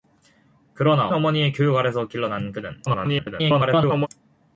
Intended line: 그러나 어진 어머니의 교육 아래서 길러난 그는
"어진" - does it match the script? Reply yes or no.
no